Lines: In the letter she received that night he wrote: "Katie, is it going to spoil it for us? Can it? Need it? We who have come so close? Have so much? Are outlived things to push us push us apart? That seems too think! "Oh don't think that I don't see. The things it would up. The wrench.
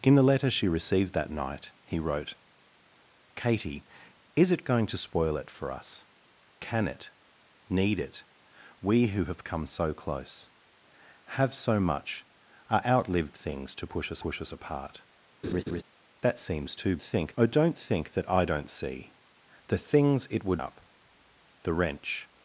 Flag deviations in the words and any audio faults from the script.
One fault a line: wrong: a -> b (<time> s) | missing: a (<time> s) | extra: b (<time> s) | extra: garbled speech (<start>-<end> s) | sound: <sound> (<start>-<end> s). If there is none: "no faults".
sound: laugh (15.4-15.8 s)